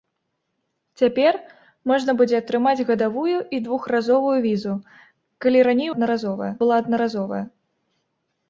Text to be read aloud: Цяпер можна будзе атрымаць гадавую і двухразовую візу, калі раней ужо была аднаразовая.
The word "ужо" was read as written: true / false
false